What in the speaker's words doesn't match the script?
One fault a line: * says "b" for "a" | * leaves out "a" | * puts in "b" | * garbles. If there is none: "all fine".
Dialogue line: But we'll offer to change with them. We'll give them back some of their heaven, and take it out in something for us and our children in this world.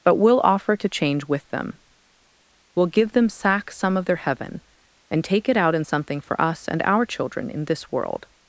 * says "sack" for "back"